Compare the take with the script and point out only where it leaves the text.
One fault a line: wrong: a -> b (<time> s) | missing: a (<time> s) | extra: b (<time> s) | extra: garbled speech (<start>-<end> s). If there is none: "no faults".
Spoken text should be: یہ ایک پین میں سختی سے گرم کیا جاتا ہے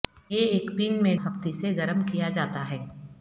no faults